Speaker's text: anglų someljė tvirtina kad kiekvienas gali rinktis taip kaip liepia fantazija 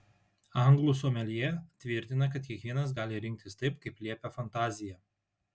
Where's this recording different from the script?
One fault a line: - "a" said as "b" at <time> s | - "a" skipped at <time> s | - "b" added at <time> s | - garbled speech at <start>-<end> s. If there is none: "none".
none